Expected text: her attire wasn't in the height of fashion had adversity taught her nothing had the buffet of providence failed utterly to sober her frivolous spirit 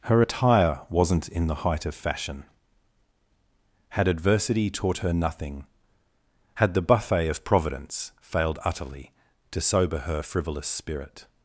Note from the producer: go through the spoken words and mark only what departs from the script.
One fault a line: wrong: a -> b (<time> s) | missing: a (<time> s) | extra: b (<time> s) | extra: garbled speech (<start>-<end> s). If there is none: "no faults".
no faults